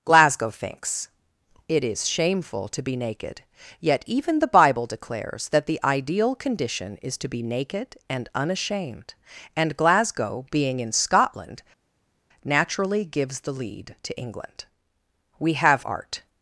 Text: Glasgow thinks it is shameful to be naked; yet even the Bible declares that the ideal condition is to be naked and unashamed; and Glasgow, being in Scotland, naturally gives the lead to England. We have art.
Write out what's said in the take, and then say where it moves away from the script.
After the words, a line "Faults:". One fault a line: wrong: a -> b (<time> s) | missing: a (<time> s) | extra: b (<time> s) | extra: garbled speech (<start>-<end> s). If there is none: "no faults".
Glasgow thinks it is shameful to be naked; yet even the Bible declares that the ideal condition is to be naked and unashamed; and Glasgow, being in Scotland, naturally gives the lead to England. We have art.
Faults:
no faults